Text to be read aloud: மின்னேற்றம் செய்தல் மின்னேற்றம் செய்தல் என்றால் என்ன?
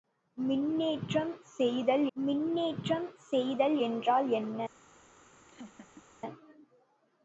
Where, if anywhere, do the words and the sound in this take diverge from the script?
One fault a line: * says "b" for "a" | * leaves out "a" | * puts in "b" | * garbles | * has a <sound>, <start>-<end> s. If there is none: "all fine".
* has a laugh, 5.5-6.0 s